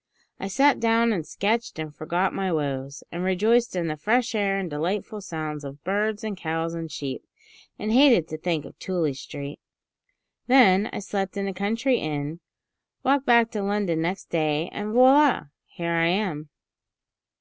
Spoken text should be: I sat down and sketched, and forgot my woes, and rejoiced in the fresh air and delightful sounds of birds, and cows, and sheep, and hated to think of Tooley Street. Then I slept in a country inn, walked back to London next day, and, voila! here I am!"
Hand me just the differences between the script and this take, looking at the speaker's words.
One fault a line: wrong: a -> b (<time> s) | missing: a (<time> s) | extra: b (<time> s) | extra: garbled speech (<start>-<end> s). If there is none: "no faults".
no faults